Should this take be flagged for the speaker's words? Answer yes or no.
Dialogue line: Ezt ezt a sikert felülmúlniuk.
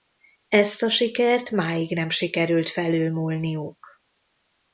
yes